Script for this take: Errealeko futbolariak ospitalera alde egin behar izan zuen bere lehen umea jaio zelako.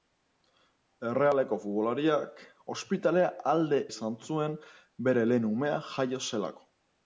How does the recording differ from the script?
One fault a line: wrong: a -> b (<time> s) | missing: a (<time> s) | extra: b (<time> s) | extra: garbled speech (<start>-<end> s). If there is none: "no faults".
missing: egin behar (3.8 s)